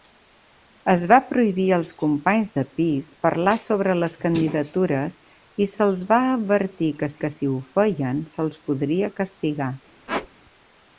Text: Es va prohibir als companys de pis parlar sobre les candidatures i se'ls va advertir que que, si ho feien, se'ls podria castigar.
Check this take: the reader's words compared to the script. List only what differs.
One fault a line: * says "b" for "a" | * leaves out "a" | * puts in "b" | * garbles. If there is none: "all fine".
all fine